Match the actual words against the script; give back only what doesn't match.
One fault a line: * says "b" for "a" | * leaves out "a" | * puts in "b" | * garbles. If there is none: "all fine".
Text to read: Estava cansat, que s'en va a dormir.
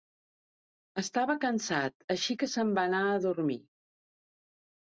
* puts in "així"
* puts in "anar"